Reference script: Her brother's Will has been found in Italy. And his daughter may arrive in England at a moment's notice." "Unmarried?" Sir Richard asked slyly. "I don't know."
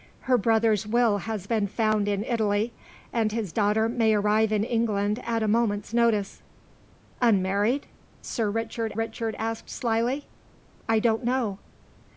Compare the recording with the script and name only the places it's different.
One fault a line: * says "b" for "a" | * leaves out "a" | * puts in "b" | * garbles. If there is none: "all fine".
* puts in "Richard"